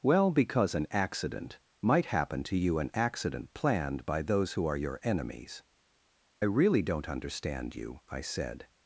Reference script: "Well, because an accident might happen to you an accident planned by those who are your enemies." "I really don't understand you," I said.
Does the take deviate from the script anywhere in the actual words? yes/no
yes